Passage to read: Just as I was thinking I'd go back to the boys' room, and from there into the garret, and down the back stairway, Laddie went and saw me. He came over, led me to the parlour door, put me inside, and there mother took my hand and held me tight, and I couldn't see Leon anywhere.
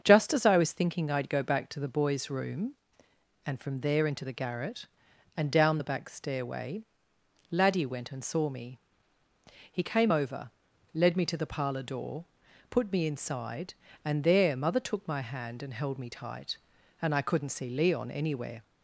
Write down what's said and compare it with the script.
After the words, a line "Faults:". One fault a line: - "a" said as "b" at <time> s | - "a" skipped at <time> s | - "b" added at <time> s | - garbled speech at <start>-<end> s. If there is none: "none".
Just as I was thinking I'd go back to the boys' room, and from there into the garret, and down the back stairway, Laddie went and saw me. He came over, led me to the parlour door, put me inside, and there mother took my hand and held me tight, and I couldn't see Leon anywhere.
Faults:
none